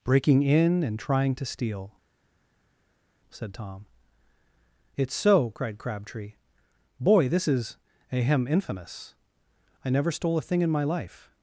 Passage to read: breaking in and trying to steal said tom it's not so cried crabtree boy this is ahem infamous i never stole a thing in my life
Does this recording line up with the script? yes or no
no